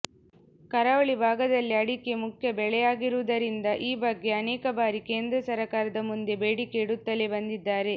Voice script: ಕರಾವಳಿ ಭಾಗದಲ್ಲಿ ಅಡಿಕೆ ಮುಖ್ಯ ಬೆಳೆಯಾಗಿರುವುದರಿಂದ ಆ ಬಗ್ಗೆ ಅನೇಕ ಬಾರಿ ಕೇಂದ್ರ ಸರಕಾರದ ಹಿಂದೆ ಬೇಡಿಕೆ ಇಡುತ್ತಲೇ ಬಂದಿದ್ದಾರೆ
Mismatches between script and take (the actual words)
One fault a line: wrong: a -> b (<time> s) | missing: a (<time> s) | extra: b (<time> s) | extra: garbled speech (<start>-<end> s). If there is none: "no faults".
wrong: ಆ -> ಈ (3.8 s)
wrong: ಹಿಂದೆ -> ಮುಂದೆ (6.1 s)